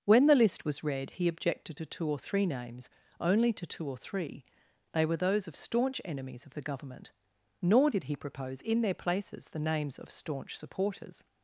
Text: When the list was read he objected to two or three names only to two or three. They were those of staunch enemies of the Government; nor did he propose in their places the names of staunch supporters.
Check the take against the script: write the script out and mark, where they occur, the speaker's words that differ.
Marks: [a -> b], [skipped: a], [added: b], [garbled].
When the list was read he objected to two or three names only to two or three. They were those of staunch enemies of the Government; nor did he propose in their places the names of staunch supporters.